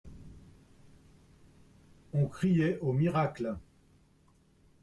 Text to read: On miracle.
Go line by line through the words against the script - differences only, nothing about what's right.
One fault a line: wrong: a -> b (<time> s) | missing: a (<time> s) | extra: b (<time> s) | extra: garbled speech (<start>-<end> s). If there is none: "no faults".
extra: criait au (2.2 s)